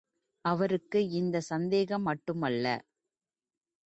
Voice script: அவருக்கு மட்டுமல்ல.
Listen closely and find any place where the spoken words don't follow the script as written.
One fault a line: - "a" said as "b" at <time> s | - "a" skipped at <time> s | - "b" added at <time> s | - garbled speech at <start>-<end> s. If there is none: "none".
- "இந்தச் சந்தேகம்" added at 1.1 s